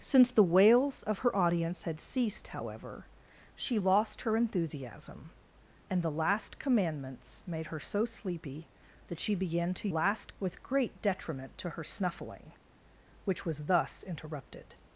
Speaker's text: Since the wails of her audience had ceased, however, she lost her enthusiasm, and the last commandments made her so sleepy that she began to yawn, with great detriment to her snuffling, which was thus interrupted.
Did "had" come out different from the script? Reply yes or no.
no